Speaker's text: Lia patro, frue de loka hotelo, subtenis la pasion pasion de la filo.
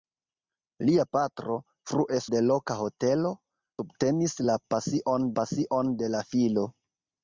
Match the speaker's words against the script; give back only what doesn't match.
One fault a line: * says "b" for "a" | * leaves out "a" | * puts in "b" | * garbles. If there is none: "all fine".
all fine